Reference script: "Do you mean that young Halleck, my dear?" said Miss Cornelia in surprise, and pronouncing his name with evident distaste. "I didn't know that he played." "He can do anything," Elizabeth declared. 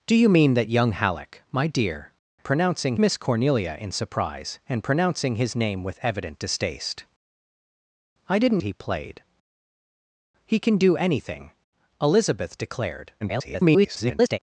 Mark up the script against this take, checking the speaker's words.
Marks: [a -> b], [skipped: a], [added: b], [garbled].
"Do you mean that young Halleck, my dear?" [said -> pronouncing] Miss Cornelia in surprise, and pronouncing his name with evident distaste. "I didn't [skipped: know that] he played." "He can do anything," Elizabeth declared. [garbled]